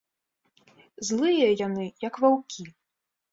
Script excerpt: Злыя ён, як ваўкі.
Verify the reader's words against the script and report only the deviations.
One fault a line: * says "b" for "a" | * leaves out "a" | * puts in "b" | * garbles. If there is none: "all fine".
* says "яны" for "ён"